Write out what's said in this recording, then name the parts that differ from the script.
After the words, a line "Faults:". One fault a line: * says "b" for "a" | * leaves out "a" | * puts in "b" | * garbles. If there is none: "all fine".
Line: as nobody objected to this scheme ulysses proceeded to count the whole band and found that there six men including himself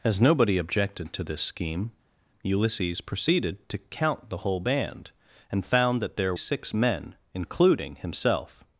as nobody objected to this scheme ulysses proceeded to count the whole band and found that there six men including himself
Faults:
all fine